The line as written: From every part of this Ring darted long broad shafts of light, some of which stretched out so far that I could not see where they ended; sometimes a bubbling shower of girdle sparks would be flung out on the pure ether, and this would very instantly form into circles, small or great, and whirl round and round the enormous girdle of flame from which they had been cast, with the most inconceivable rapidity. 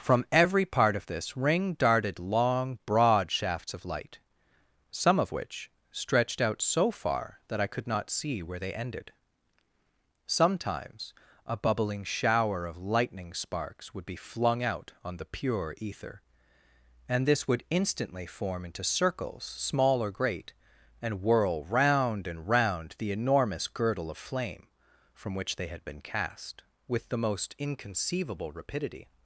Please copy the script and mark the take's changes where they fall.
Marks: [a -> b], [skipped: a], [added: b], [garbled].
From every part of this Ring darted long broad shafts of light, some of which stretched out so far that I could not see where they ended; sometimes a bubbling shower of [girdle -> lightning] sparks would be flung out on the pure ether, and this would [skipped: very] instantly form into circles, small or great, and whirl round and round the enormous girdle of flame from which they had been cast, with the most inconceivable rapidity.